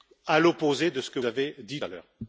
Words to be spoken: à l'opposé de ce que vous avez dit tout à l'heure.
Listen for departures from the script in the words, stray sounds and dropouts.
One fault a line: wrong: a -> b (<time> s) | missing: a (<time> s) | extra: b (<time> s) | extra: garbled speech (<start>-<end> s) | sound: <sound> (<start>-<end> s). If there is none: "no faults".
missing: vous (1.2 s)
missing: tout (1.8 s)